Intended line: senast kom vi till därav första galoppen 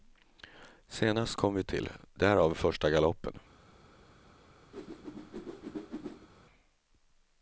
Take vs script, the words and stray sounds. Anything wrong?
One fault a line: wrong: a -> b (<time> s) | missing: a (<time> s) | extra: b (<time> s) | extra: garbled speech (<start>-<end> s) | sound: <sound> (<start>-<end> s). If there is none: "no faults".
sound: whoosh (4.7-6.3 s)